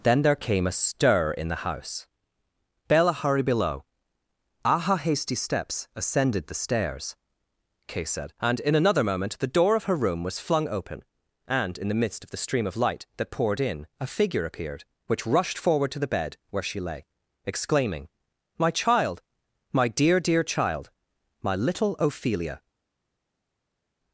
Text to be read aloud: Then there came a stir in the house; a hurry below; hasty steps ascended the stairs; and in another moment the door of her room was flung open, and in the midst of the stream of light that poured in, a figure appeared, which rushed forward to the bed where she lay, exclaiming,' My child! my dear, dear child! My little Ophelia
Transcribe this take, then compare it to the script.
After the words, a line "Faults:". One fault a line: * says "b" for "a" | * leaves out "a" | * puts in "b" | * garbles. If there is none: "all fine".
Then there came a stir in the house; bella hurried below; aha hasty steps ascended the stairs; kay said and in another moment the door of her room was flung open, and in the midst of the stream of light that poured in, a figure appeared, which rushed forward to the bed where she lay, exclaiming,' My child! my dear, dear child! My little Ophelia
Faults:
* says "bella hurried" for "a hurry"
* puts in "aha"
* puts in "kay said"